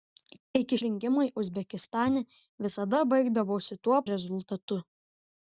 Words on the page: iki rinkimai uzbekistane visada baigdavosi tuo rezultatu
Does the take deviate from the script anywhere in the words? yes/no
no